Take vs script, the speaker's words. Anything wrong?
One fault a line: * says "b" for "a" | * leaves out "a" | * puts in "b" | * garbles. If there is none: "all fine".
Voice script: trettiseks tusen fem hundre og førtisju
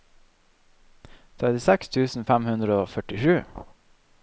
all fine